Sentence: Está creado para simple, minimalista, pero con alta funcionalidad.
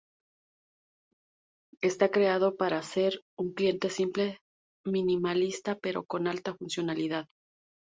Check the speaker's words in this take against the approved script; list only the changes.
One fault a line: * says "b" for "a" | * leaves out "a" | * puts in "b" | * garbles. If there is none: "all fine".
* puts in "ser un cliente"